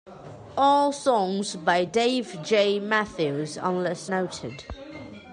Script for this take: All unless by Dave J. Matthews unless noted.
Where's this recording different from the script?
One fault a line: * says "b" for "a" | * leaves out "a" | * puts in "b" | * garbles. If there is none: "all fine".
* says "songs" for "unless"